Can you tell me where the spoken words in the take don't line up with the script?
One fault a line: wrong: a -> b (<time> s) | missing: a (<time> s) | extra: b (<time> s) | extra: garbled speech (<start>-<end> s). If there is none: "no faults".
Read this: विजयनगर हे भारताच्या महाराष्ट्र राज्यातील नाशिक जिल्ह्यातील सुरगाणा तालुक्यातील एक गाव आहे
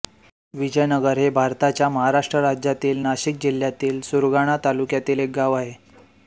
no faults